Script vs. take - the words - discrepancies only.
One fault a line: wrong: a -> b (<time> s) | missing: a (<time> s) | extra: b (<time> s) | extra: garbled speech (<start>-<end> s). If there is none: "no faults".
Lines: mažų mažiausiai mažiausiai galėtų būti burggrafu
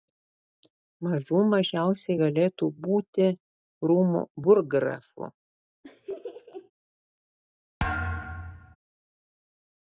missing: mažiausiai (2.2 s)
extra: rūmų (3.9 s)